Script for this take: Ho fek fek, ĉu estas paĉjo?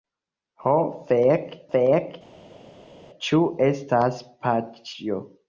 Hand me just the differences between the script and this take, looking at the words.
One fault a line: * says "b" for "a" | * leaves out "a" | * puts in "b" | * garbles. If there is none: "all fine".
all fine